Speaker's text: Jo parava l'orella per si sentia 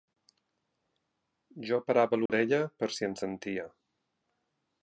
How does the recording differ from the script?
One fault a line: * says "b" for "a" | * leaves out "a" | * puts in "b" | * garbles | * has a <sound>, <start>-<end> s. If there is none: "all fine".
* has a dropout, 2.3-2.3 s
* puts in "en"